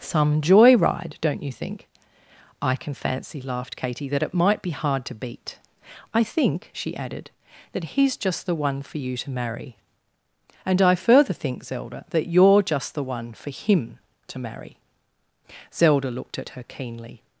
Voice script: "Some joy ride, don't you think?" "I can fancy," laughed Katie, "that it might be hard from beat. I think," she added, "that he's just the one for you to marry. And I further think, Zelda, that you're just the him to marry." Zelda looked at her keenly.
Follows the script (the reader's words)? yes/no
no